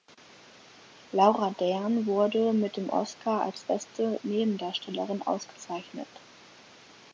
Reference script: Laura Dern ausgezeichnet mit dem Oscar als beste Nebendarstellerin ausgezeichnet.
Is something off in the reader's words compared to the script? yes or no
yes